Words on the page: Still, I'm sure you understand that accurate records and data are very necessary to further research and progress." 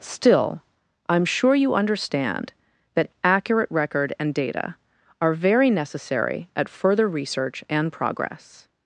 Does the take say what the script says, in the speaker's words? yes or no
no